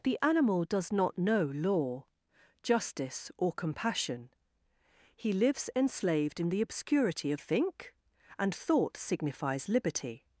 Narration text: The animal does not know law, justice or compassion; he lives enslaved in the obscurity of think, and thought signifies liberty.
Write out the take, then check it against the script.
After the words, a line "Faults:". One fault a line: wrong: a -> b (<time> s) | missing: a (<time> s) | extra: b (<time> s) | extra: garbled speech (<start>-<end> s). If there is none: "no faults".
The animal does not know law, justice or compassion; he lives enslaved in the obscurity of think, and thought signifies liberty.
Faults:
no faults